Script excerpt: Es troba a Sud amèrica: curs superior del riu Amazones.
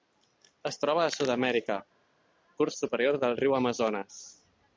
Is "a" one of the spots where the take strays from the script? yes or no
no